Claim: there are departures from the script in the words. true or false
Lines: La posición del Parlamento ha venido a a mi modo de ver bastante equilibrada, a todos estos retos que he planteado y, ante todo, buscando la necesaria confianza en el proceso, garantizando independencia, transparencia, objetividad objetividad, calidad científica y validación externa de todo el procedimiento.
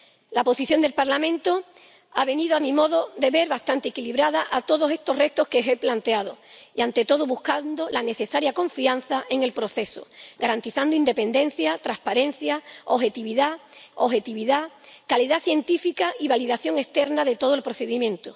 false